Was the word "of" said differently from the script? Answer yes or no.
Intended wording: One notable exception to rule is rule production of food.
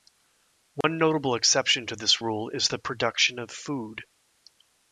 no